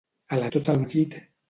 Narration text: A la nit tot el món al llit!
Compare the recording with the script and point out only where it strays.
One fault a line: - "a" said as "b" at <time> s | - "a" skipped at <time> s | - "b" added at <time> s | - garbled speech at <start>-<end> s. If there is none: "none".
- "nit" skipped at 0.5 s
- "món" skipped at 0.8 s